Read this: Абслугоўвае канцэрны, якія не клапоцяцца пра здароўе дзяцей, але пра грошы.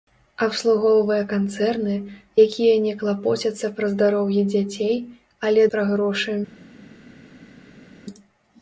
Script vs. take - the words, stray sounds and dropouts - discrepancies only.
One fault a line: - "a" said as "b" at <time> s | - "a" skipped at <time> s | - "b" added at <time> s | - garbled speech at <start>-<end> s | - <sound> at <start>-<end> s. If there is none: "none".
none